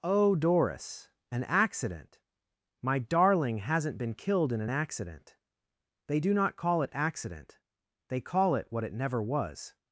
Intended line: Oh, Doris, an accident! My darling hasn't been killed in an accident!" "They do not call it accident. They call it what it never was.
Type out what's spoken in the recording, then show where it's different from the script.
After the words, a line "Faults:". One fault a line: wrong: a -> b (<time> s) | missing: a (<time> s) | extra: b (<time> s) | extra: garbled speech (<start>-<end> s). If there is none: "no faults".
Oh, Doris, an accident! My darling hasn't been killed in an accident!" "They do not call it accident. They call it what it never was.
Faults:
no faults